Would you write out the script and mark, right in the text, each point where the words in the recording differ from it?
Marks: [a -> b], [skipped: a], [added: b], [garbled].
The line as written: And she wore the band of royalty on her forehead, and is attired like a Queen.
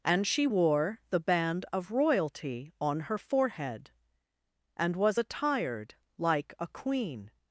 And she wore the band of royalty on her forehead, and [is -> was] attired like a Queen.